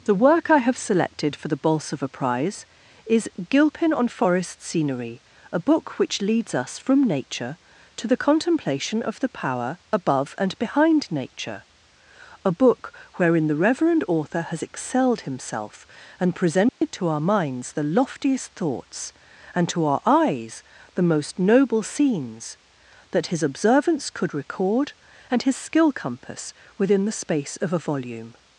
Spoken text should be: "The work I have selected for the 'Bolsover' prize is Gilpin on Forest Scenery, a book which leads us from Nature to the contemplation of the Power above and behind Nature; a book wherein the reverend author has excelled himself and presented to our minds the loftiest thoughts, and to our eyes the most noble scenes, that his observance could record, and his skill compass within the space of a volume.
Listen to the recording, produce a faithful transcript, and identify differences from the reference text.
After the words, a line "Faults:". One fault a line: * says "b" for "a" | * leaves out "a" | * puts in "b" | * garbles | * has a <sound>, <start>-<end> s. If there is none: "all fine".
"The work I have selected for the 'Bolsover' prize is Gilpin on Forest Scenery, a book which leads us from Nature to the contemplation of the Power above and behind Nature; a book wherein the reverend author has excelled himself and presented to our minds the loftiest thoughts, and to our eyes the most noble scenes, that his observance could record, and his skill compass within the space of a volume.
Faults:
* has a dropout, 16.7-16.8 s